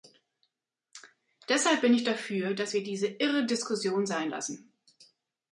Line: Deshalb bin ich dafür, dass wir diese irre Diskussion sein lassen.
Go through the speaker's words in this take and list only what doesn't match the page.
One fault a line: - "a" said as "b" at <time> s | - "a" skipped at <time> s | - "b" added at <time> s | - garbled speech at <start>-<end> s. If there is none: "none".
none